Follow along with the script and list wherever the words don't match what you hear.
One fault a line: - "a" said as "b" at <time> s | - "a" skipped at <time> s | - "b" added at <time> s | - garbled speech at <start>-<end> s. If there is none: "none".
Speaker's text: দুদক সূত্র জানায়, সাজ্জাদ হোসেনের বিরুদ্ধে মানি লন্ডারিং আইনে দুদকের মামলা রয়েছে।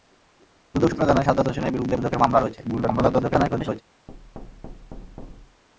- "মানি লন্ডারিং আইনে" skipped at 1.9 s
- garbled speech at 2.6-3.8 s